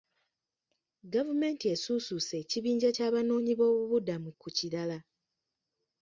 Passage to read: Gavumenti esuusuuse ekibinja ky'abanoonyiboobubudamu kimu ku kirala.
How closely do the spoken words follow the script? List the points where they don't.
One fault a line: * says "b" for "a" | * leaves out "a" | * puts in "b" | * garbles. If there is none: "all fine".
* leaves out "kimu"